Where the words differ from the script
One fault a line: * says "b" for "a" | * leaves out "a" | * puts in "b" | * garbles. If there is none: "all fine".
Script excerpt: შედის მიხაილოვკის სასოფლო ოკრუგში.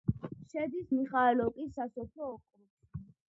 all fine